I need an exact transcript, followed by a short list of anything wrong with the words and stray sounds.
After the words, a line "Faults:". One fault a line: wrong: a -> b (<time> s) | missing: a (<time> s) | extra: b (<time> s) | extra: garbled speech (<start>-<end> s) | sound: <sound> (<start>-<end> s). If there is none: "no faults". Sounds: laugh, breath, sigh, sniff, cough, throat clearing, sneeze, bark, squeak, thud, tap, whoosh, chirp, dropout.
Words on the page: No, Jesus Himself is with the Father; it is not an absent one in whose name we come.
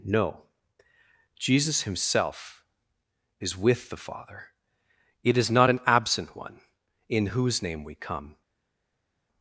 No, Jesus Himself is with the Father; it is not an absent one in whose name we come.
Faults:
no faults